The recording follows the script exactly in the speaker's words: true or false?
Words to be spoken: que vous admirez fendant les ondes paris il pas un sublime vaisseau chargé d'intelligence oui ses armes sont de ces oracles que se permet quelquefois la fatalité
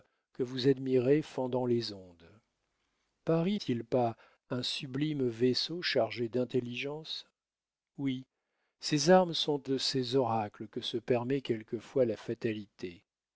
true